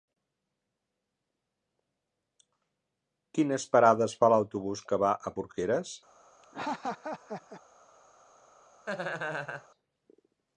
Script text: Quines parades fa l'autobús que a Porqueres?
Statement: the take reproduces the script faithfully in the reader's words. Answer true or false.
false